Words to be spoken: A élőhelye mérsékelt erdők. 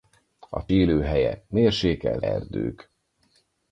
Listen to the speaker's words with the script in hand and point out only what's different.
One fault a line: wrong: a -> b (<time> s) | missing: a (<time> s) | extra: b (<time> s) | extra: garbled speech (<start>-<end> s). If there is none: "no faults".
no faults